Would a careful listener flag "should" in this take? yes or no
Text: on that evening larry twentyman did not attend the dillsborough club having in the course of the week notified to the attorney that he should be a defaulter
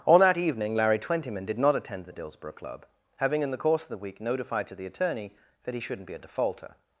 yes